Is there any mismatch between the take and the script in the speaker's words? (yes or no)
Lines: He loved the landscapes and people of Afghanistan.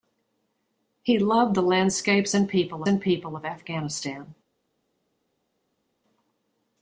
yes